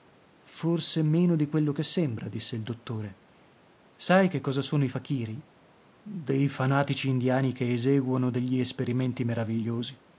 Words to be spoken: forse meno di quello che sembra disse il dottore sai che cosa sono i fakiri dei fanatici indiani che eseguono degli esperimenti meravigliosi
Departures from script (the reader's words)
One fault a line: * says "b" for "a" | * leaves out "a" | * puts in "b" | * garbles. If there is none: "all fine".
all fine